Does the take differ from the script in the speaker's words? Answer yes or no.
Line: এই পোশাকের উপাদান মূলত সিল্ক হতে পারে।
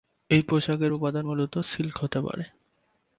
no